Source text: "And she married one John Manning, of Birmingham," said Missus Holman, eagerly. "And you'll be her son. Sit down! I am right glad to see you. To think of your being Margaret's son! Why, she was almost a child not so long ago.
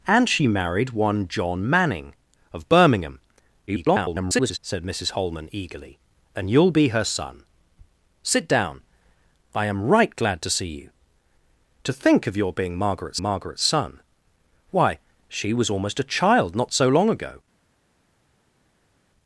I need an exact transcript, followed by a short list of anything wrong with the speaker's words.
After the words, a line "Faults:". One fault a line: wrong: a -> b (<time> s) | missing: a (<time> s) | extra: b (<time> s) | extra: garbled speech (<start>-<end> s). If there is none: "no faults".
"And she married one John Manning, of Birmingham," [garbled] said Missus Holman, eagerly. "And you'll be her son. Sit down! I am right glad to see you. To think of your being Margaret's Margaret's son! Why, she was almost a child not so long ago.
Faults:
extra: garbled speech (3.7-4.6 s)
extra: Margaret's (13.2 s)